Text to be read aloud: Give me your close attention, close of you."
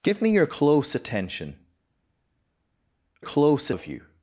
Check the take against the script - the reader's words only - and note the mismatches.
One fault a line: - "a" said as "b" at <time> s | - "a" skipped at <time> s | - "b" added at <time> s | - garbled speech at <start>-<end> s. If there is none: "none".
none